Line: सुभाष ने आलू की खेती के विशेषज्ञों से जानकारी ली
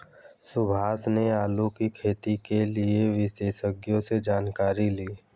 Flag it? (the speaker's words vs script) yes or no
yes